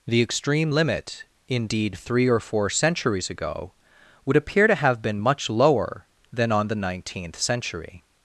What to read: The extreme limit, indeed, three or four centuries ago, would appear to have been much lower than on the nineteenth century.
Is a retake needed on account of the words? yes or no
no